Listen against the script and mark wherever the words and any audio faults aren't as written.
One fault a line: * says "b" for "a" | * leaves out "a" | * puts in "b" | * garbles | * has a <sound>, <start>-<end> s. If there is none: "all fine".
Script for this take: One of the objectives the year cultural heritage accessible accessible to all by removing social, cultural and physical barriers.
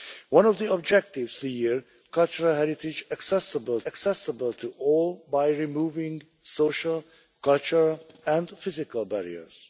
all fine